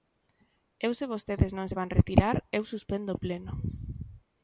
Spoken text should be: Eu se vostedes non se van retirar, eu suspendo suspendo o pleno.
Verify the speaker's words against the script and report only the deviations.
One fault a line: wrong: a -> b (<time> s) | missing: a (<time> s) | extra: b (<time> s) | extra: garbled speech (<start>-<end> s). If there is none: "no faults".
missing: suspendo (3.1 s)